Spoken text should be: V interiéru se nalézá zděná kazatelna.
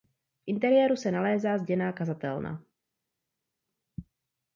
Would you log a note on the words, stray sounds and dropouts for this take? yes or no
no